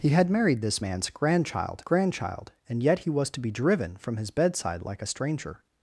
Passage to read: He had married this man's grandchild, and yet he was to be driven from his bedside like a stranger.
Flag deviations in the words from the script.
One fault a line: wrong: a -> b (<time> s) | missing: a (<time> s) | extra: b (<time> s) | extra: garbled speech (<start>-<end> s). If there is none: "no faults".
extra: grandchild (1.8 s)